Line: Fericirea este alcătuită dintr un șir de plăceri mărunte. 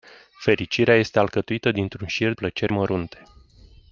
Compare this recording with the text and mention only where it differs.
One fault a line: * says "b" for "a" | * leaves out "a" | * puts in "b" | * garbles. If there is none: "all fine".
* leaves out "de"